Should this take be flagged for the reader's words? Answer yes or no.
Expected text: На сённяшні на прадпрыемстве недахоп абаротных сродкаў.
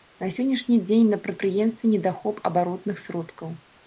yes